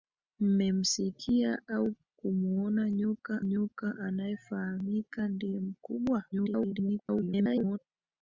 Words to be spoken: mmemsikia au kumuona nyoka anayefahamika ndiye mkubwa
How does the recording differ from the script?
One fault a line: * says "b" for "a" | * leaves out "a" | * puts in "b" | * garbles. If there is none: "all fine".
* puts in "nyoka"
* garbles